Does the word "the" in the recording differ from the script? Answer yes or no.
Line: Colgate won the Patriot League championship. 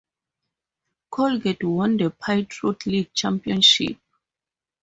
no